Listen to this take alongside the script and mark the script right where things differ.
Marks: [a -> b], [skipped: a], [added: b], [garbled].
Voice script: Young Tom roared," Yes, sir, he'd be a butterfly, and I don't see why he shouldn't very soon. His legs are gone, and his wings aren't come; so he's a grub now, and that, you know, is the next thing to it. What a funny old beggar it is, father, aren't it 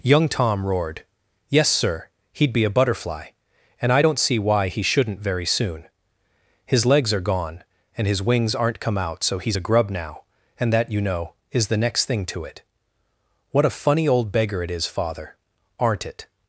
Young Tom roared," Yes, sir, he'd be a butterfly, and I don't see why he shouldn't very soon. His legs are gone, and his wings aren't come; [added: out] so he's a grub now, and that, you know, is the next thing to it. What a funny old beggar it is, father, aren't it